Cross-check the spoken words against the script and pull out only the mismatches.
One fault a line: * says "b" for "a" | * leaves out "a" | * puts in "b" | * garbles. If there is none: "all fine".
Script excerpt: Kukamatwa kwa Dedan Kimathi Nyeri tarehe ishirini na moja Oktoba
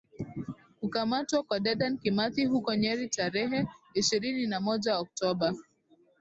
* puts in "huko"